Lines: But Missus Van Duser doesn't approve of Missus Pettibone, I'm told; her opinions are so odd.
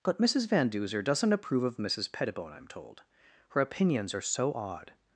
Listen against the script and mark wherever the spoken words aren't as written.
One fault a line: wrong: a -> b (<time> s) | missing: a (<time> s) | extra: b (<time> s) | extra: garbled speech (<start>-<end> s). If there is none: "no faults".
no faults